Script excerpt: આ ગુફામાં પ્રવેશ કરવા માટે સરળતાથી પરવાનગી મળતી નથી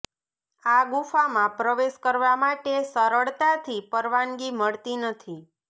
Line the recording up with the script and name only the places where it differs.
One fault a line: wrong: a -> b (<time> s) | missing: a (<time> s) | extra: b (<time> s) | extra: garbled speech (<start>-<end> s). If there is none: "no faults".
no faults